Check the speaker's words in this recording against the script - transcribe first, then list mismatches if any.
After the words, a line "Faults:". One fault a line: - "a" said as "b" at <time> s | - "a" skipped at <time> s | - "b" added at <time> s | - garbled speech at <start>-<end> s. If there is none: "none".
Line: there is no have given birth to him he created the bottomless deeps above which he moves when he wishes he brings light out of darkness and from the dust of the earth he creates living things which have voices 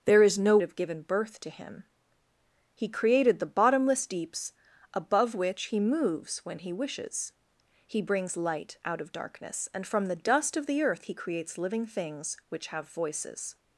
there is no have given birth to him he created the bottomless deeps above which he moves when he wishes he brings light out of darkness and from the dust of the earth he creates living things which have voices
Faults:
none